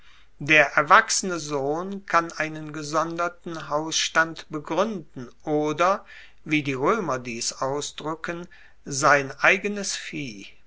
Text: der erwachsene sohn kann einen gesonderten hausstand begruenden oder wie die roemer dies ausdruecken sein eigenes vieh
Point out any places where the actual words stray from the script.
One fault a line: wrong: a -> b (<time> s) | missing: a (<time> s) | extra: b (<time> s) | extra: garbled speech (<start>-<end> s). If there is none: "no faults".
no faults